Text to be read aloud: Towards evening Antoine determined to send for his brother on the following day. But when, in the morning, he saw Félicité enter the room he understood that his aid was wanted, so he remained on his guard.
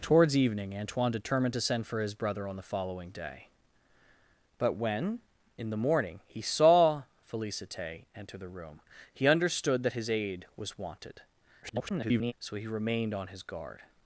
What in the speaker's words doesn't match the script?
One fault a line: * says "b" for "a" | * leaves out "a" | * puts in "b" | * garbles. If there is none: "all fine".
* garbles